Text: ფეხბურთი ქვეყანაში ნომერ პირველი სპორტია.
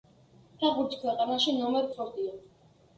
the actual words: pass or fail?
fail